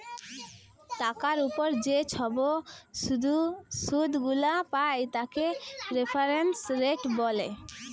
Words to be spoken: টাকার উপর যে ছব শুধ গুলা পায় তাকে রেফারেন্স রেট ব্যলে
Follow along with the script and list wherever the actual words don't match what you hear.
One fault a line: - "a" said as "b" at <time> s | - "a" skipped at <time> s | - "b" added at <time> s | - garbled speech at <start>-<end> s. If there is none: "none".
none